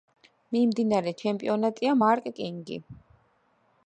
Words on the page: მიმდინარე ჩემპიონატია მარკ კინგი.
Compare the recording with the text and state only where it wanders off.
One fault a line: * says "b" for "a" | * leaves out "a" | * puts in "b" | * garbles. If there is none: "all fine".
all fine